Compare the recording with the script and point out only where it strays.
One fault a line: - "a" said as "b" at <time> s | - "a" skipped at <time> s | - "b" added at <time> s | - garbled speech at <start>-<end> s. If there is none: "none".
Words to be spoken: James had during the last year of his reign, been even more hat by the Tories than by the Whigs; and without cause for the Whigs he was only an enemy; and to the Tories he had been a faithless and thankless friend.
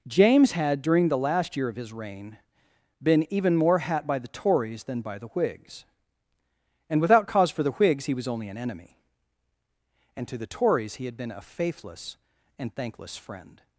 none